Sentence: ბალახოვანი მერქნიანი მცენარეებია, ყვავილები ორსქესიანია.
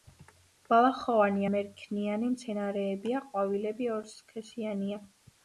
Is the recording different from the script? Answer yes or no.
no